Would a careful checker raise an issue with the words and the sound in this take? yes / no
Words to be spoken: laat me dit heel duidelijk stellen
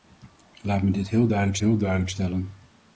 yes